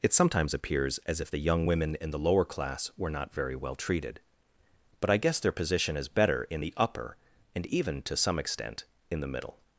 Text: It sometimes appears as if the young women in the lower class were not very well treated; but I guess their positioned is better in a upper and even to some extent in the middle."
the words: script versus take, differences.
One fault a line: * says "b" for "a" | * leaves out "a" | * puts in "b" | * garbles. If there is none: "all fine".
* says "position" for "positioned"
* says "the" for "a"